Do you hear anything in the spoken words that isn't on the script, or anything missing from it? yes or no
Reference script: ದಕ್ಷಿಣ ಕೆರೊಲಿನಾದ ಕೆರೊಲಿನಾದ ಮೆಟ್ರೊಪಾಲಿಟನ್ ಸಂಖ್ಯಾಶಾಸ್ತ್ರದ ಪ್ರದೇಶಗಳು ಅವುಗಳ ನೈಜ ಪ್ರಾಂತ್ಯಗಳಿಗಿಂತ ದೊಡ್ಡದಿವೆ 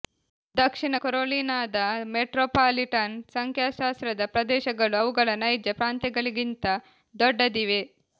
yes